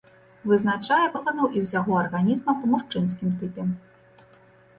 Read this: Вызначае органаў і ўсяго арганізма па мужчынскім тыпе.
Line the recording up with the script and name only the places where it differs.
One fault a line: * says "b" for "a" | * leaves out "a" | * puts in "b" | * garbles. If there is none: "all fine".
all fine